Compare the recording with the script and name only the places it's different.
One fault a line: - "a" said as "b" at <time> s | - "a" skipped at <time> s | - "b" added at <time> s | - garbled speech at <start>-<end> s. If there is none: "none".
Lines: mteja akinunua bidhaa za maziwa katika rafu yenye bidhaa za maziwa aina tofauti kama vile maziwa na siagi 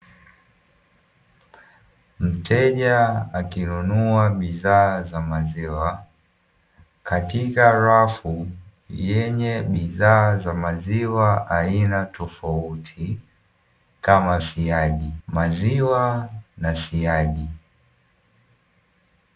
- "vile" said as "siagi" at 14.4 s